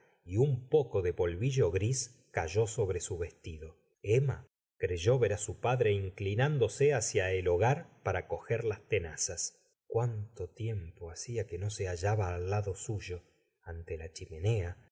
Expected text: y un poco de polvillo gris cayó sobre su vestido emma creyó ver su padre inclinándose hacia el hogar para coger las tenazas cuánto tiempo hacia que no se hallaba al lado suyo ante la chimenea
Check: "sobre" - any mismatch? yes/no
no